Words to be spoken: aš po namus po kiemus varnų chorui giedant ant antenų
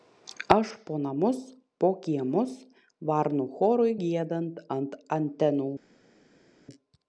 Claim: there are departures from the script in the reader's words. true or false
false